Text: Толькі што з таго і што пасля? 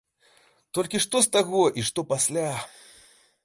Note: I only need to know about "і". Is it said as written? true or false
true